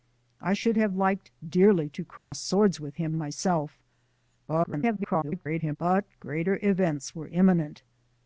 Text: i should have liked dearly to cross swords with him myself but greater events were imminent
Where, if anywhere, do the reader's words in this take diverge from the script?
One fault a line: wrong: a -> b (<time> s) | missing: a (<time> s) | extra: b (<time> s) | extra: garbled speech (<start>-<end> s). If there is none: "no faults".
extra: garbled speech (4.5-5.8 s)